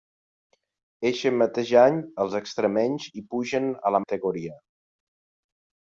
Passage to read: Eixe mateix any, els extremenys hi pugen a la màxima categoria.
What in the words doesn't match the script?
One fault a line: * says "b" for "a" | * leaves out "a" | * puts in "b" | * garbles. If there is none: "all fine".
* leaves out "màxima"